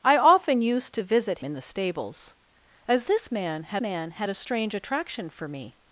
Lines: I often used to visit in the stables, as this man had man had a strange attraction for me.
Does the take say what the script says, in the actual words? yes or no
yes